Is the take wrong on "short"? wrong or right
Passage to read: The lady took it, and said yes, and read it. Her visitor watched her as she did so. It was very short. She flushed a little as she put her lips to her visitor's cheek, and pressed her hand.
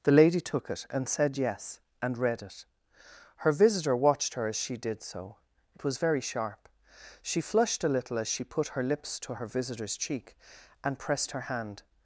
wrong